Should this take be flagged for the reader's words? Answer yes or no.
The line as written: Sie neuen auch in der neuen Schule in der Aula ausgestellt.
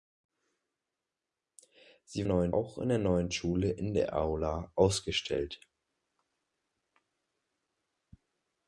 no